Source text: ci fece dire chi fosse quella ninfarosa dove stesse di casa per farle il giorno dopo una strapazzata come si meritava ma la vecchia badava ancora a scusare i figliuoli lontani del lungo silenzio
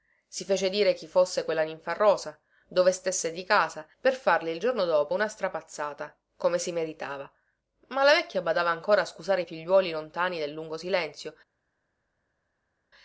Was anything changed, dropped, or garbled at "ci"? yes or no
yes